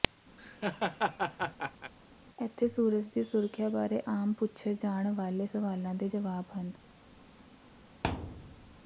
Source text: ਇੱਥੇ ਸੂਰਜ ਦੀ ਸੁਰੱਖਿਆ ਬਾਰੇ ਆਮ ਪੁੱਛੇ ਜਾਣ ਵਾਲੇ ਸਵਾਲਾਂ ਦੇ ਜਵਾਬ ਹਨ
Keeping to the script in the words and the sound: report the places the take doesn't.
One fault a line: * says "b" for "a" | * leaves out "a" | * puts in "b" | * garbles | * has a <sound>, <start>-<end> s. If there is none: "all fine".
* has a laugh, 0.4-1.9 s
* has a thud, 8.0-8.8 s